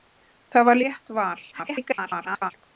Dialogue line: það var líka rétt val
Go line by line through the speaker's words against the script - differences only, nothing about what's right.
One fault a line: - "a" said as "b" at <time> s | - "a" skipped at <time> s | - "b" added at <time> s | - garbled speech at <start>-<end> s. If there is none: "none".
- "líka" skipped at 0.8 s
- garbled speech at 1.5-2.5 s